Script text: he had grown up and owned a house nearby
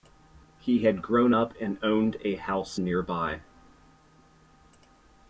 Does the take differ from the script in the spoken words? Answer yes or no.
no